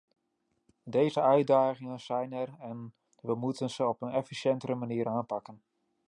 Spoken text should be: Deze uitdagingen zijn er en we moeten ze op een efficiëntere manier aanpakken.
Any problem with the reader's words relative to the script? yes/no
no